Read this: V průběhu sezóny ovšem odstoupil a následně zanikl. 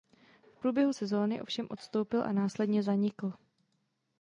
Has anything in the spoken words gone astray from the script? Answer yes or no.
no